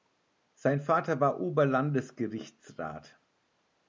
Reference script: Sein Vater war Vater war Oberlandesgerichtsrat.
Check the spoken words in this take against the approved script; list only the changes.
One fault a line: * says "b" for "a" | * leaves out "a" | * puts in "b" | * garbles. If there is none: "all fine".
* leaves out "Vater war"